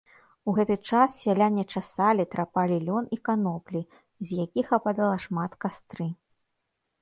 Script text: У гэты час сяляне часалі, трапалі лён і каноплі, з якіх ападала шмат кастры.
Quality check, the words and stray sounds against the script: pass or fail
pass